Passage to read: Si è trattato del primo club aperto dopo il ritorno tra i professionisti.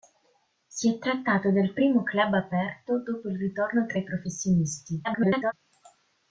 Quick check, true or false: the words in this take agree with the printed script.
false